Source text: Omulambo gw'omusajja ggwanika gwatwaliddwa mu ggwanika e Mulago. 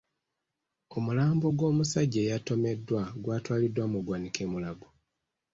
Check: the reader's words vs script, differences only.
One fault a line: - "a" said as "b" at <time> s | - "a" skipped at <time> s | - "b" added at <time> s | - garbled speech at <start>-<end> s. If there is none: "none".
- "ggwanika" said as "eyatomeddwa" at 2.2 s